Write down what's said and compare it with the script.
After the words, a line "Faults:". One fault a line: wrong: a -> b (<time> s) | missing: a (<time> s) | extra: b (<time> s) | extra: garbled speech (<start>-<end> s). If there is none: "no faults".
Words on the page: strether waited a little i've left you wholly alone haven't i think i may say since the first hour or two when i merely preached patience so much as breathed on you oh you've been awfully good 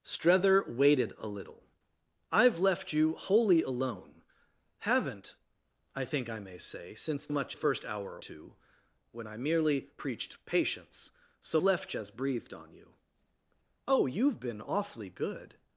strether waited a little i've left you wholly alone haven't i think i may say since much first hour two when i merely preached patience so left as breathed on you oh you've been awfully good
Faults:
wrong: the -> much (7.3 s)
missing: or (8.2 s)
wrong: much -> left (11.6 s)